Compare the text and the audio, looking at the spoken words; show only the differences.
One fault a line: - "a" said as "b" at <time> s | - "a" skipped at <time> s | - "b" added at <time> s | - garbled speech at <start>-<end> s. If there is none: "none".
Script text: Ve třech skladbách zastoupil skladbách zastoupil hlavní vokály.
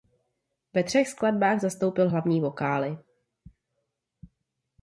- "skladbách zastoupil" skipped at 2.1 s